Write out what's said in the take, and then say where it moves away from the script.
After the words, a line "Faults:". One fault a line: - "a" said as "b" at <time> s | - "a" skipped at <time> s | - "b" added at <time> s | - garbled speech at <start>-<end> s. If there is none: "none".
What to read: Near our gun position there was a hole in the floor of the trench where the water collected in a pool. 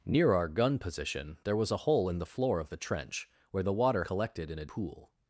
Near our gun position there was a hole in the floor of the trench where the water collected in a pool.
Faults:
none